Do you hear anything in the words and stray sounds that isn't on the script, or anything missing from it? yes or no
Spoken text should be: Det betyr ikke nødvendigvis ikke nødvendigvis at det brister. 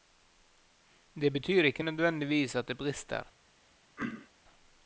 yes